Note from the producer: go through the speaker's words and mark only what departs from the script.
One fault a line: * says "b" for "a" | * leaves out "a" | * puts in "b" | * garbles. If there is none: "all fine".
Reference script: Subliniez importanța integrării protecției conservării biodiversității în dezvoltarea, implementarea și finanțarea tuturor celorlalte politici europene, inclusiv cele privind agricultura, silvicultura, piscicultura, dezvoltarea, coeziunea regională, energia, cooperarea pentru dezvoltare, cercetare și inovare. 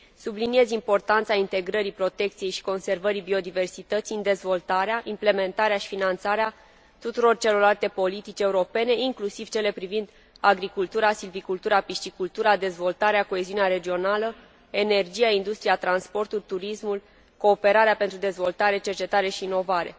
* puts in "și"
* puts in "industria transportul turismul"